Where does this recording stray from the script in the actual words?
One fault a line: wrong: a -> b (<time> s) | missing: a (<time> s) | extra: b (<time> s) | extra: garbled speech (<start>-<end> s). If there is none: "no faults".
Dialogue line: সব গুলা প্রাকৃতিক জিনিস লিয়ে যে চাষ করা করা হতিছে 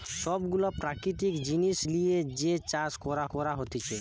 no faults